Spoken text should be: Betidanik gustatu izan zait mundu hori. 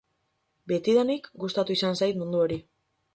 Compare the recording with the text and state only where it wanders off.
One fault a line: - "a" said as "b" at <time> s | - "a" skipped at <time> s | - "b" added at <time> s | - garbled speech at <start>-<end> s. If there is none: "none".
none